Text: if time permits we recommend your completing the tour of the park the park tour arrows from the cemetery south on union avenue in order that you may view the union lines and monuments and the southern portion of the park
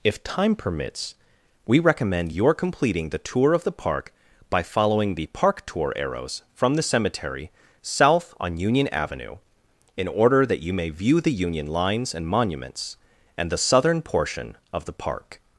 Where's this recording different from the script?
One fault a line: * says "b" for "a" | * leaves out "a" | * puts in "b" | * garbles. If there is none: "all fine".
* puts in "by following"